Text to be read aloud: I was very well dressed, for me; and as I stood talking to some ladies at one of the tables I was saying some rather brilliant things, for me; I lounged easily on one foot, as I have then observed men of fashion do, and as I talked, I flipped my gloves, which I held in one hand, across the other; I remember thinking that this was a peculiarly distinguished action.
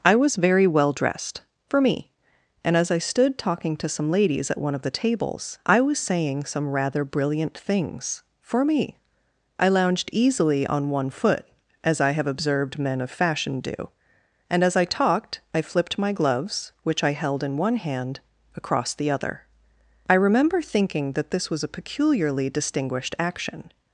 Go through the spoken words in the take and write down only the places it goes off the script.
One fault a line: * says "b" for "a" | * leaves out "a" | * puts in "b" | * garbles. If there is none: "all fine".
* leaves out "then"